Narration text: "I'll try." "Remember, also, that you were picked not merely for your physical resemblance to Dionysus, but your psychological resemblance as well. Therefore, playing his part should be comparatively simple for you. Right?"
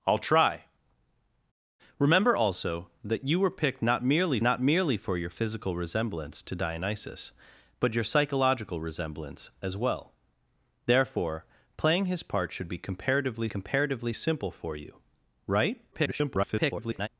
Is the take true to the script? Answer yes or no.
no